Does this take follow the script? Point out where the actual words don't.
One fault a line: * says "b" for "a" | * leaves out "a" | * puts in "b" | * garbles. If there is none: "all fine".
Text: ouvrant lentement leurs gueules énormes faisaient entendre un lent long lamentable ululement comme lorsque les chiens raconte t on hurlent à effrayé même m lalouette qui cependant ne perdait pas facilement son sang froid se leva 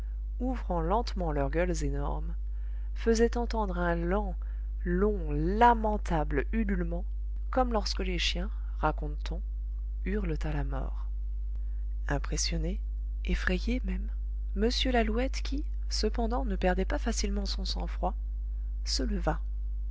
* puts in "la mort impressionné"